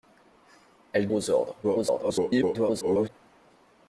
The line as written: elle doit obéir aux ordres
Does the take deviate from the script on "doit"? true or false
true